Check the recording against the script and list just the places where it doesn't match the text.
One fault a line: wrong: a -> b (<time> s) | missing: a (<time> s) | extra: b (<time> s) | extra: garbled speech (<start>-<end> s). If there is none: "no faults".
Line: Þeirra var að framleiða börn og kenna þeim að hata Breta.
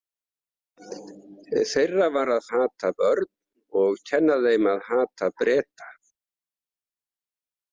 wrong: framleiða -> hata (2.5 s)